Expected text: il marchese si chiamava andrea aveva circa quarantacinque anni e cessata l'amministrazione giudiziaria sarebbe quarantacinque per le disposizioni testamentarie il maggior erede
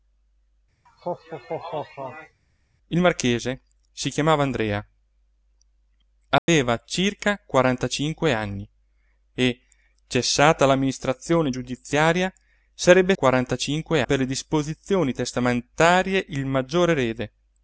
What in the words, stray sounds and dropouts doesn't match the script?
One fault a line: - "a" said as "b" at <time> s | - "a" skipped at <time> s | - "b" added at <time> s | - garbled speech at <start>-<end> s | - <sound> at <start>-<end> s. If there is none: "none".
- laugh at 0.9-2.4 s
- dropout at 6.4-6.5 s